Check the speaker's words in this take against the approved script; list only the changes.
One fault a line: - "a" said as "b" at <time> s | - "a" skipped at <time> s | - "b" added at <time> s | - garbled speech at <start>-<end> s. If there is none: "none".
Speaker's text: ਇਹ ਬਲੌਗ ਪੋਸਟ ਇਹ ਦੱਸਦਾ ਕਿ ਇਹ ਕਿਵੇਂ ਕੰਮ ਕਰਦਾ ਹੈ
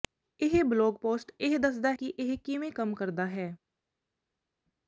none